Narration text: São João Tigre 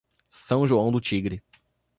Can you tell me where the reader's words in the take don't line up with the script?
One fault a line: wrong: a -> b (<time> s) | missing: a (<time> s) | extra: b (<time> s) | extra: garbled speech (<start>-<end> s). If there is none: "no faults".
extra: do (0.9 s)